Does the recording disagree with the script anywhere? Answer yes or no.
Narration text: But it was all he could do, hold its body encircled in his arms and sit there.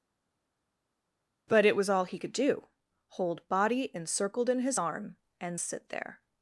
yes